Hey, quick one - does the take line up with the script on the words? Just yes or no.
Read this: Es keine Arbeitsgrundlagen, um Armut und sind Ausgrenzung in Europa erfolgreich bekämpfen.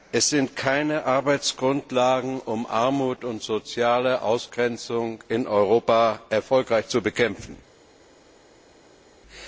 no